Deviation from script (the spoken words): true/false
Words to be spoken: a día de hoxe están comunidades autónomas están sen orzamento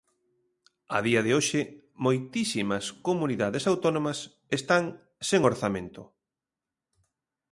true